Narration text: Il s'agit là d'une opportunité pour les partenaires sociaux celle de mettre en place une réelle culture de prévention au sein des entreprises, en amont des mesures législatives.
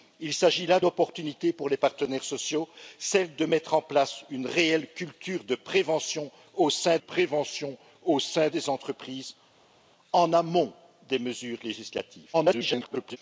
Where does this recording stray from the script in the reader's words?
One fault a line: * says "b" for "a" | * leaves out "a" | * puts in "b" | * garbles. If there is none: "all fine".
* leaves out "d'une"
* puts in "prévention au sein"
* garbles